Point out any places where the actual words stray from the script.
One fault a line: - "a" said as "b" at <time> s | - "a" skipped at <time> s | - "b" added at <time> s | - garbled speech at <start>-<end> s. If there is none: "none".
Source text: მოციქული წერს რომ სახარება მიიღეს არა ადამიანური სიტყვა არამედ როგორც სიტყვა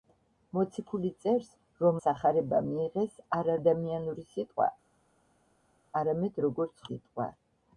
none